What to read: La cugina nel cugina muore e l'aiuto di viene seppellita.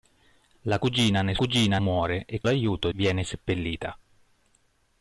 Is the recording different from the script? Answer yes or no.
no